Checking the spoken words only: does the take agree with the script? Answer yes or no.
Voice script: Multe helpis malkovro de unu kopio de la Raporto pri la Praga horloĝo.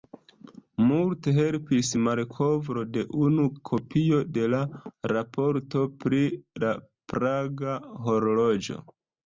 yes